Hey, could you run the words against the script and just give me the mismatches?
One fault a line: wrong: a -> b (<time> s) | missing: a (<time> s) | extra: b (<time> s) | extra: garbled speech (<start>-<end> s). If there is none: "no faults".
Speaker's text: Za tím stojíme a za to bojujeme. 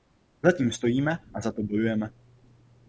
no faults